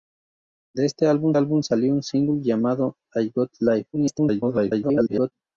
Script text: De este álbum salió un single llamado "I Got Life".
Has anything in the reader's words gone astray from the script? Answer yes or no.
yes